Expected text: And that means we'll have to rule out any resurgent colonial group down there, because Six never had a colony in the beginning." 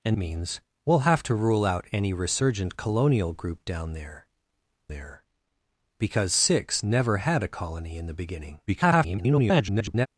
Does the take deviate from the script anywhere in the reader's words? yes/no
yes